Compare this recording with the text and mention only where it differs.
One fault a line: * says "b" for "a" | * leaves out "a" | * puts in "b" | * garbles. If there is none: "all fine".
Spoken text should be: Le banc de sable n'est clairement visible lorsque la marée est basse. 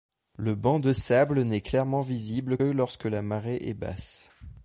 all fine